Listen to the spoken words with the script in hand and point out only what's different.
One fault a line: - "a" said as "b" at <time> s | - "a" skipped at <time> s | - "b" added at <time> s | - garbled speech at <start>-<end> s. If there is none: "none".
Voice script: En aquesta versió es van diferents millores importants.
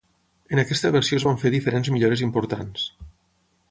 - "fer" added at 1.4 s